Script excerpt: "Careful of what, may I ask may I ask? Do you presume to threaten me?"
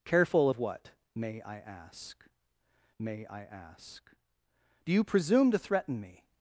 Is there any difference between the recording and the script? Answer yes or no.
no